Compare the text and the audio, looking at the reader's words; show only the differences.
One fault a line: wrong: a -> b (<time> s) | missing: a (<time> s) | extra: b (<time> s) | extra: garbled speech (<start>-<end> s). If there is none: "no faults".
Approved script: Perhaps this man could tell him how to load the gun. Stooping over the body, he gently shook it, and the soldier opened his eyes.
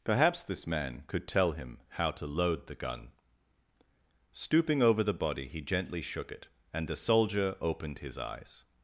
no faults